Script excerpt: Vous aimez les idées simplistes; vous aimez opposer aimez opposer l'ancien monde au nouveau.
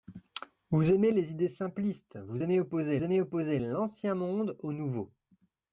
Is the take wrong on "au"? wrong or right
right